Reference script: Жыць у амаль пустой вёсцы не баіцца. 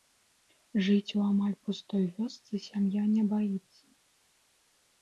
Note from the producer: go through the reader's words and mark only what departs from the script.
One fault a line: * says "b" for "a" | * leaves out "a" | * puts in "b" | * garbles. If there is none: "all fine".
* puts in "сям'я"